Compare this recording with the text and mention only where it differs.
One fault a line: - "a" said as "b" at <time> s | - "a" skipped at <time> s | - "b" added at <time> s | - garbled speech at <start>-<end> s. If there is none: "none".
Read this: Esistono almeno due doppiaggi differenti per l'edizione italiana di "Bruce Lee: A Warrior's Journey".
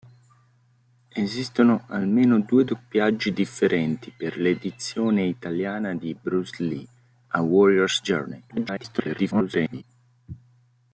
- garbled speech at 8.5-9.8 s